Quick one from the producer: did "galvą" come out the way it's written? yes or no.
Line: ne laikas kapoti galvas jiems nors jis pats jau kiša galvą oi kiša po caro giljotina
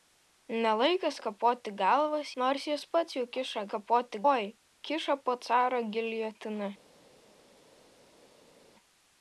no